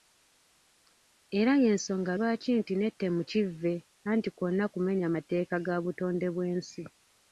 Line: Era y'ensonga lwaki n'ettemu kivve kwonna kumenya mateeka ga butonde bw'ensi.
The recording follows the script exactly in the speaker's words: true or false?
false